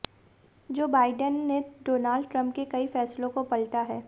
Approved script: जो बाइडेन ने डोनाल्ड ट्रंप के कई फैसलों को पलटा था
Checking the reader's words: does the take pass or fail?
fail